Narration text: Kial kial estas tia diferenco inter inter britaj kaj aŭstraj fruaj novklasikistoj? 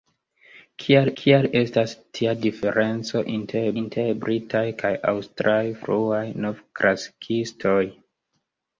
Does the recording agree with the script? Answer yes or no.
yes